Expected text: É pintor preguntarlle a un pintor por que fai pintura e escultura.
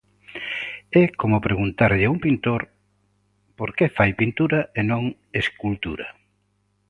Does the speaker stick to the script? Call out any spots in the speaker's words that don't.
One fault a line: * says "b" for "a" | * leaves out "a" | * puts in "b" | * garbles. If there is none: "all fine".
* says "como" for "pintor"
* puts in "non"